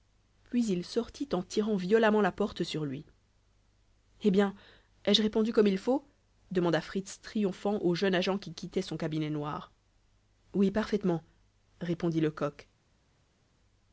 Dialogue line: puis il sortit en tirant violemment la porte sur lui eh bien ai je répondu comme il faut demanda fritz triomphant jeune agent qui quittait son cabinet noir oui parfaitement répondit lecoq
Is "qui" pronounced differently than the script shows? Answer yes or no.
no